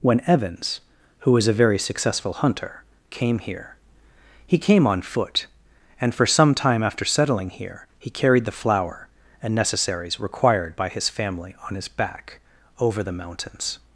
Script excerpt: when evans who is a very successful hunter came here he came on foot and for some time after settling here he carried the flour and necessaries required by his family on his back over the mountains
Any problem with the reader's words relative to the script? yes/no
yes